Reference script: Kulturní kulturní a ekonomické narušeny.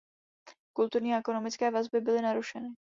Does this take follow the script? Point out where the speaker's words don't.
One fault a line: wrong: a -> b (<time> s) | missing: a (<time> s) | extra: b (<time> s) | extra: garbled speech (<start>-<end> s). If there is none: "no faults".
missing: kulturní (1.1 s)
extra: vazby byly (1.7 s)